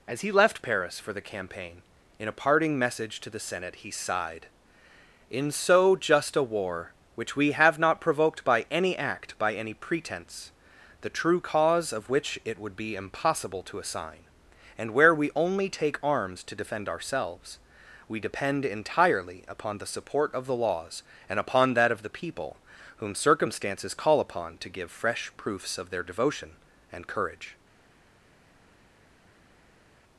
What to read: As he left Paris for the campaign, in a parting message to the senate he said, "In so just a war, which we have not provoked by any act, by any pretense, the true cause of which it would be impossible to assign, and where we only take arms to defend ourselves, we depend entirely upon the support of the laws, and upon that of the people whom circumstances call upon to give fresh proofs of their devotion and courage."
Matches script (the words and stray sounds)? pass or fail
fail